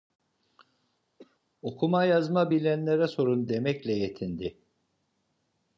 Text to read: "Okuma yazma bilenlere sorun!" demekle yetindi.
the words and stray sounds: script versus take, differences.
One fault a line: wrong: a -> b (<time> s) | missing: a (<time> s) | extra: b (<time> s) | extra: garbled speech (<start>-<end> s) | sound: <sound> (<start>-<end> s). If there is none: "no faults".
sound: cough (1.2-1.4 s)